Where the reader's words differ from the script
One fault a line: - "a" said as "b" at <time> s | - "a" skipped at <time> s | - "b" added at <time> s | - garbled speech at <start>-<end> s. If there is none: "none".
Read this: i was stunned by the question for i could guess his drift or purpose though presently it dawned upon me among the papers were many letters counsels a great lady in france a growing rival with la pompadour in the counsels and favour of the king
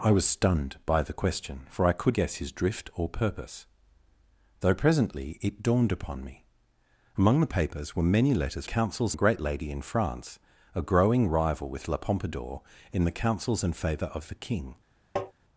none